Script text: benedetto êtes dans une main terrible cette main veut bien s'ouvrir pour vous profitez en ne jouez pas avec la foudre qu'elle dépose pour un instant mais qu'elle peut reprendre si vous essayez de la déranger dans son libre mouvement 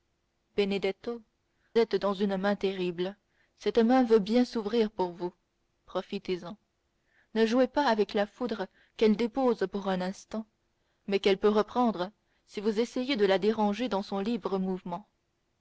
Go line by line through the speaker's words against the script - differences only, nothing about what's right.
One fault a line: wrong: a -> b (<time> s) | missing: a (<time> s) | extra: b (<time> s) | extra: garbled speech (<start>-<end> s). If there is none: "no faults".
no faults